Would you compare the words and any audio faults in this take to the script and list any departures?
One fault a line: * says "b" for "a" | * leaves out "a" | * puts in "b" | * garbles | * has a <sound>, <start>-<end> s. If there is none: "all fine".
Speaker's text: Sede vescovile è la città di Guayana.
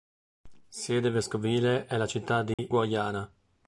* has a dropout, 2.5-2.6 s